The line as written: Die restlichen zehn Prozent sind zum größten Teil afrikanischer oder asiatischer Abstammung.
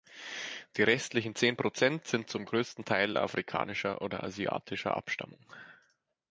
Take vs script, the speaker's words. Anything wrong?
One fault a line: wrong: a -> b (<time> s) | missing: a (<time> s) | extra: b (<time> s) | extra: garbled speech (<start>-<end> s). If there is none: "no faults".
no faults